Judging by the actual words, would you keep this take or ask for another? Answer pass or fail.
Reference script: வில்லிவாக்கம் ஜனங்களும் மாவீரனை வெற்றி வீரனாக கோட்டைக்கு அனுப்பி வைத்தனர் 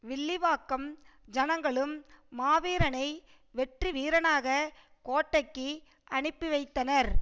pass